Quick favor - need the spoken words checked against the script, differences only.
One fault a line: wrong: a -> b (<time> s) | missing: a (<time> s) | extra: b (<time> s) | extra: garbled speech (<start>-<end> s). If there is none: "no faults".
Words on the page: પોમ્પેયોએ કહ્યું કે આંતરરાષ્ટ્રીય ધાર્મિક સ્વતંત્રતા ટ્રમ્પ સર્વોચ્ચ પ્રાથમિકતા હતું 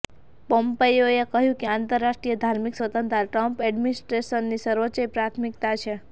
extra: એડમિનિસ્ટ્રેશનની (3.6 s)
wrong: હતું -> છે (5.8 s)